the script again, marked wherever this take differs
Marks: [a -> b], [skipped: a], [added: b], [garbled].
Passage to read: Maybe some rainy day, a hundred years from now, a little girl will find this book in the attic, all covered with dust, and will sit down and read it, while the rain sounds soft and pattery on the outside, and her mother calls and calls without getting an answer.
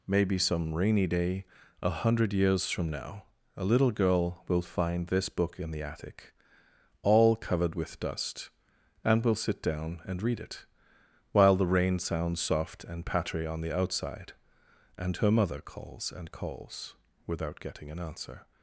Maybe some rainy day, a hundred years from now, a little girl will find this book in the attic, all covered with dust, and will sit down and read it, while the rain sounds soft and pattery on the outside, and her mother calls and calls without getting an answer.